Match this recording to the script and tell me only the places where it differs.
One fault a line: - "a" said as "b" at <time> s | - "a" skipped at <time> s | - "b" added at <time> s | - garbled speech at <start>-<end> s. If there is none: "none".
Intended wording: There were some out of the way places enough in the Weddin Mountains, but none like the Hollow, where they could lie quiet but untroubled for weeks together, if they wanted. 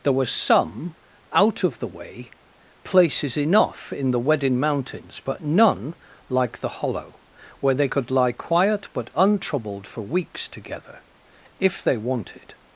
none